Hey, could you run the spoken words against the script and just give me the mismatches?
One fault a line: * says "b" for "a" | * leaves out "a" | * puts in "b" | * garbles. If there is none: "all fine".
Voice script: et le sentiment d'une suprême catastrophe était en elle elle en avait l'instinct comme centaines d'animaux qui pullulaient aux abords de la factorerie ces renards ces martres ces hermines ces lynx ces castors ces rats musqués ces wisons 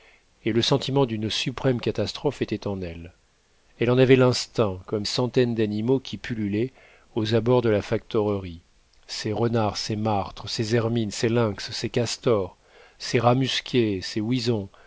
all fine